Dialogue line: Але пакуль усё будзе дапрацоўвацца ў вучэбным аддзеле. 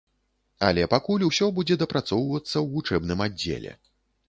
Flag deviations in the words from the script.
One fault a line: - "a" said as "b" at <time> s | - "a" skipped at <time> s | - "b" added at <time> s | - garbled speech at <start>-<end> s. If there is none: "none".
none